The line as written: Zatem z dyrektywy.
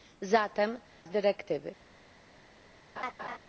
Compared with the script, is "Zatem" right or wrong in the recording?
right